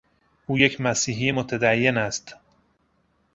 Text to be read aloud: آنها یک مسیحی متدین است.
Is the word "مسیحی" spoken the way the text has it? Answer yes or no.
yes